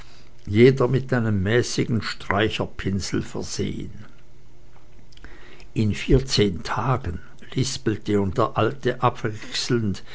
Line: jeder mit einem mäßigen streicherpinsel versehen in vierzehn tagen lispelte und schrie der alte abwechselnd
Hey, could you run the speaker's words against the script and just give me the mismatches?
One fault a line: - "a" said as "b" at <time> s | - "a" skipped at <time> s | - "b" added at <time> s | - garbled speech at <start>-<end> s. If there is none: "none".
- "schrie" skipped at 8.3 s